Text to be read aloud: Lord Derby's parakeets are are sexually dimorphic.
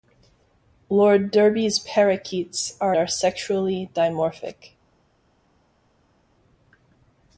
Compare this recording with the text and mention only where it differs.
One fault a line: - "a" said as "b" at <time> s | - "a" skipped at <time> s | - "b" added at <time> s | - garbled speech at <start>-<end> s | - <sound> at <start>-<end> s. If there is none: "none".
none